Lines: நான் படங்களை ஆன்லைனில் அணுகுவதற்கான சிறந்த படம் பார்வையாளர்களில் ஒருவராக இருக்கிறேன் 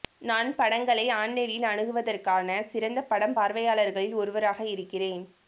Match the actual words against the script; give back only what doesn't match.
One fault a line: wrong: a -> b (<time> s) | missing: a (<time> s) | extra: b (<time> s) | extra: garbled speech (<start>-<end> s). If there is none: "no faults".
no faults